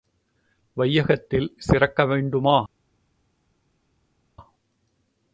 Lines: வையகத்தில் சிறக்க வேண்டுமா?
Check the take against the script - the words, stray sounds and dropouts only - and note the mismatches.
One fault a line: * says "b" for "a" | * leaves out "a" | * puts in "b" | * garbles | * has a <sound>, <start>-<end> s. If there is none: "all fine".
all fine